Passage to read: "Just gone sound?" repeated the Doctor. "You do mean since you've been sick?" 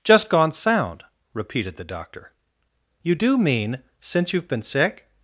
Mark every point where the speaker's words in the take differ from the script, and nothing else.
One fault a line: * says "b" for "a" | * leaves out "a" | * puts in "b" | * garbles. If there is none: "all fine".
all fine